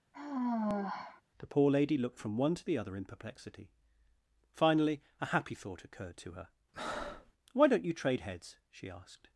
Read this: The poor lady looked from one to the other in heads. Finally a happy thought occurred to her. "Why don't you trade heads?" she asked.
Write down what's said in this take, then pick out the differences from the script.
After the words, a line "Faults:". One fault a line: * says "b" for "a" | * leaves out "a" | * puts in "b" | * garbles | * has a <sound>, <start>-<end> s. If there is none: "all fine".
The poor lady looked from one to the other in perplexity. Finally a happy thought occurred to her. "Why don't you trade heads?" she asked.
Faults:
* has a sigh, 0.1-1.2 s
* says "perplexity" for "heads"
* has a breath, 6.7-7.3 s